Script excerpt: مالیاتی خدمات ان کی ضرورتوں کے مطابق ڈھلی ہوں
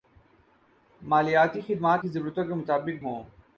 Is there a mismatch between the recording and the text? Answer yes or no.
yes